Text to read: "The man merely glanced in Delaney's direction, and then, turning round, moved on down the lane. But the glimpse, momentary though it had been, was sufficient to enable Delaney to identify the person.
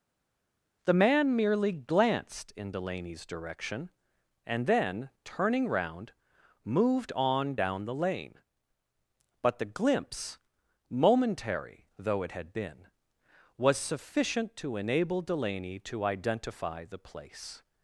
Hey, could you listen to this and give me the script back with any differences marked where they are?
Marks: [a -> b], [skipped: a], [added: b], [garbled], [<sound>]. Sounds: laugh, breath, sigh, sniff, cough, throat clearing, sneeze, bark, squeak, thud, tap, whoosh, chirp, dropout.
"The man merely glanced in Delaney's direction, and then, turning round, moved on down the lane. But the glimpse, momentary though it had been, was sufficient to enable Delaney to identify the [person. -> place]